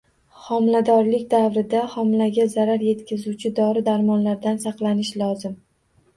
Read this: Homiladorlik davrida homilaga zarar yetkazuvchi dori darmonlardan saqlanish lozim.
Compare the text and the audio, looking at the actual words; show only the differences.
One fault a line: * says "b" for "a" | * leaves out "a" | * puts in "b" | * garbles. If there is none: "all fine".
all fine